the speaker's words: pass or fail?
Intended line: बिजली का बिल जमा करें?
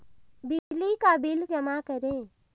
pass